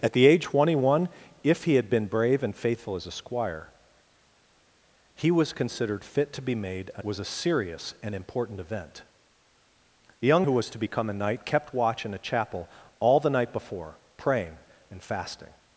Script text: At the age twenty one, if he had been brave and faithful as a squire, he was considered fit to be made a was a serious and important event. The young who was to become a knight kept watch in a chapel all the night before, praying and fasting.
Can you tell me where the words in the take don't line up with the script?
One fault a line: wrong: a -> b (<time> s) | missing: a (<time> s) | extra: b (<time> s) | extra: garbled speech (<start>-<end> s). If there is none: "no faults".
no faults